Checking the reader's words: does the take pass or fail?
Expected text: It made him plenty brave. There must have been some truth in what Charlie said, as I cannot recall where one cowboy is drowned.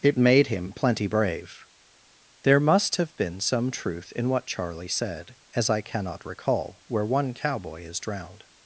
pass